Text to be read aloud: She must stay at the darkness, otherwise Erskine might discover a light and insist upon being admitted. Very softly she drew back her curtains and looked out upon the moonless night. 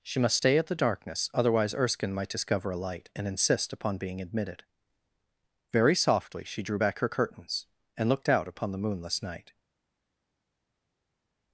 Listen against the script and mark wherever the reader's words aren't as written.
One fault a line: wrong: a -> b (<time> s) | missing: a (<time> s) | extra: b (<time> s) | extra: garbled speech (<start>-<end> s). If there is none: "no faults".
no faults